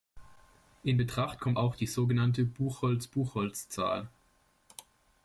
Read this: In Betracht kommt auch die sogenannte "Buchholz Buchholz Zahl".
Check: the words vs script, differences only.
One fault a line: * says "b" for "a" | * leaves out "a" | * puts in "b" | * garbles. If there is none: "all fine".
all fine